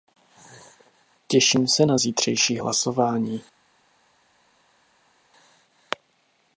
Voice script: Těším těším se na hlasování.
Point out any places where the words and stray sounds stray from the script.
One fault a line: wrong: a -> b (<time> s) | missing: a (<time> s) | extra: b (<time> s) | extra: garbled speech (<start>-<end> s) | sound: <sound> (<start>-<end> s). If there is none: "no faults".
missing: těším (1.7 s)
extra: zítřejší (2.0 s)